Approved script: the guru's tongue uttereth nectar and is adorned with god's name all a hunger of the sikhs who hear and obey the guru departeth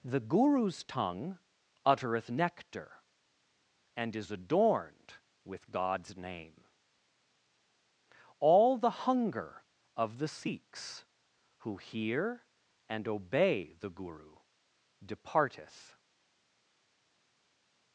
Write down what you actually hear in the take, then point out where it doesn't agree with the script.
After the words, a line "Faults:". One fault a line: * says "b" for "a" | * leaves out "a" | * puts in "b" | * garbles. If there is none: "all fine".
the guru's tongue uttereth nectar and is adorned with god's name all the hunger of the sikhs who hear and obey the guru departeth
Faults:
* says "the" for "a"